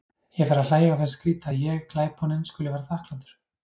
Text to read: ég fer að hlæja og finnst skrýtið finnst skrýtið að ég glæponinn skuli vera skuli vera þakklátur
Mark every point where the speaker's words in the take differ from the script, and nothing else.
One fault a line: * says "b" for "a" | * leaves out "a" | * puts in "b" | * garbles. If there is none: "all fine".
* leaves out "finnst skrýtið"
* leaves out "skuli vera"